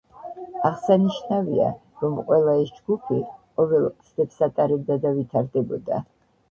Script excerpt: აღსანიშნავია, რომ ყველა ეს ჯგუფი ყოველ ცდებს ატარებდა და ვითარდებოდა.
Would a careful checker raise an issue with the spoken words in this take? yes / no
no